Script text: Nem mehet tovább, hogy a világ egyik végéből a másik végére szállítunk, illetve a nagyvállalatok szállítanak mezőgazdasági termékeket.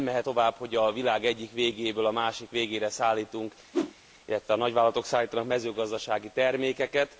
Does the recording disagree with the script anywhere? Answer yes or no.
no